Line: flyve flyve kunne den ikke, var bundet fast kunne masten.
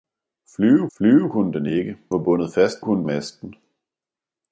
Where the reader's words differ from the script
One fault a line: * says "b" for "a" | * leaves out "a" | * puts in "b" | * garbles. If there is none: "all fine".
all fine